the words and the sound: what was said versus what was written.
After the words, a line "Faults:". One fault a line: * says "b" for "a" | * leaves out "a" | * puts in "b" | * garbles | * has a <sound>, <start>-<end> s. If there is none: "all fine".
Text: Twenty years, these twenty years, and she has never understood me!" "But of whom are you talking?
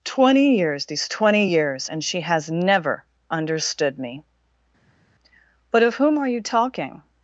Twenty years, these twenty years, and she has never understood me!" "But of whom are you talking?
Faults:
all fine